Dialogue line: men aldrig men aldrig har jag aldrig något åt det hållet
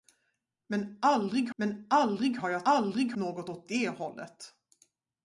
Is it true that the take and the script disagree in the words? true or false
false